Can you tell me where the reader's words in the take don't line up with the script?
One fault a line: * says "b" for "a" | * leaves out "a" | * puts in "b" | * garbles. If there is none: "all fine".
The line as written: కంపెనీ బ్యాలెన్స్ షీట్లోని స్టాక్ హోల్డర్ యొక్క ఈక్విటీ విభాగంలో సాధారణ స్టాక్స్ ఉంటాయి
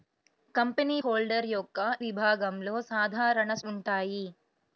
* leaves out "బ్యాలెన్స్ షీట్లోని స్టాక్"
* leaves out "ఈక్విటీ"
* leaves out "స్టాక్స్"